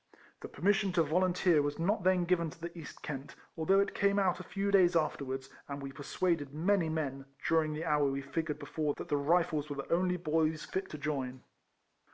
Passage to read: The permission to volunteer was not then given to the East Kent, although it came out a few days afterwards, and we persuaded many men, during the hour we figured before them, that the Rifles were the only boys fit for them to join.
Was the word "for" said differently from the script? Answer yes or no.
yes